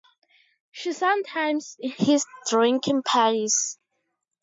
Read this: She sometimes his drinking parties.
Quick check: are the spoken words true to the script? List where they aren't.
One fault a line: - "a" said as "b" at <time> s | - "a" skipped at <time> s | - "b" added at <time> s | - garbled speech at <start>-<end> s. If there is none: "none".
none